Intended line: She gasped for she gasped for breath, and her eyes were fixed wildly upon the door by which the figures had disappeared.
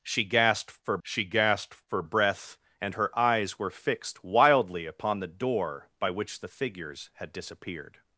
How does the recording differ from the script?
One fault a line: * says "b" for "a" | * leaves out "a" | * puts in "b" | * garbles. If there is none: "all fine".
all fine